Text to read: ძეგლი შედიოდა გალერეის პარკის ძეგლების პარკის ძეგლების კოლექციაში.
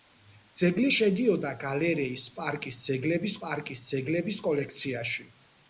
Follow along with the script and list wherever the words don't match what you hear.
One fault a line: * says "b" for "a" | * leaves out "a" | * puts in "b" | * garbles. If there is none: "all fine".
all fine